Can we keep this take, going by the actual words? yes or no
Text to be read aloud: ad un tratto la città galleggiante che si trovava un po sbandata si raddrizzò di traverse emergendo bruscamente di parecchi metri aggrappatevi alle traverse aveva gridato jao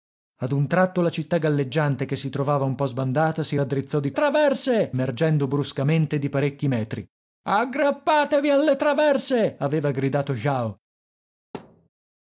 yes